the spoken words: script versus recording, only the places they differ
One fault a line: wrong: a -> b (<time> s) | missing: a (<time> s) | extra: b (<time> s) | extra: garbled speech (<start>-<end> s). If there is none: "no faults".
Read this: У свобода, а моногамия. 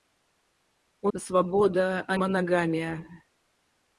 no faults